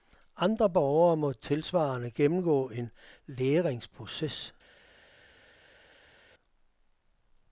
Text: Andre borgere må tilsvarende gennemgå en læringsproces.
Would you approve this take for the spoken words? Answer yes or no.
yes